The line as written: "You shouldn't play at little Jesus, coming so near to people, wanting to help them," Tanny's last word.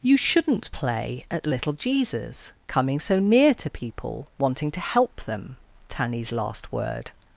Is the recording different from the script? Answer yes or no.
no